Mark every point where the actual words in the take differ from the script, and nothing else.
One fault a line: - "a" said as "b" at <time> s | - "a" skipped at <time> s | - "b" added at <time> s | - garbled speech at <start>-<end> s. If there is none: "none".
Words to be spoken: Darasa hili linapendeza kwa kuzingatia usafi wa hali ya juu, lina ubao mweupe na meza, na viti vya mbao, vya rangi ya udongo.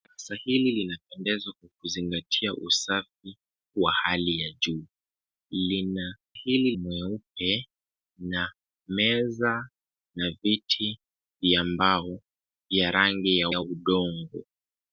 - "ubao" said as "hili" at 6.3 s
- "ya" added at 13.5 s